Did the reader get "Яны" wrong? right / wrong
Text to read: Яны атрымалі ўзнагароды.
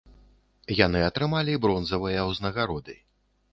right